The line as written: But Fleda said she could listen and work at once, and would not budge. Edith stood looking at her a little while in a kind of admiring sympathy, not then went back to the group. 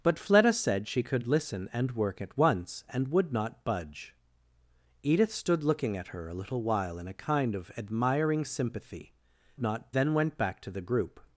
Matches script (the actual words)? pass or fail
pass